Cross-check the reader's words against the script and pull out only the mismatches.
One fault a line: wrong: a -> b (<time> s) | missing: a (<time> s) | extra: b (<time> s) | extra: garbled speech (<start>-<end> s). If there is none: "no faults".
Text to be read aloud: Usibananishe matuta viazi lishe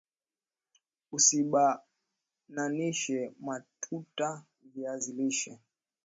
no faults